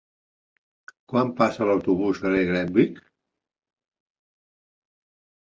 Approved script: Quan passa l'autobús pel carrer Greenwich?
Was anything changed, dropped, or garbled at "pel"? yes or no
yes